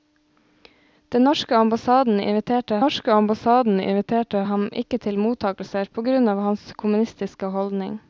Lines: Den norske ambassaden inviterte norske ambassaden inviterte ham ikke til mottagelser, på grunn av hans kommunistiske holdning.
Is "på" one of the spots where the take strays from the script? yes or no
no